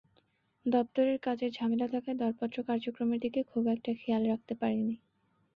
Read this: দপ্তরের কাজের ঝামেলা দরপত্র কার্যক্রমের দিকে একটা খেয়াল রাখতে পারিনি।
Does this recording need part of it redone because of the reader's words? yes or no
yes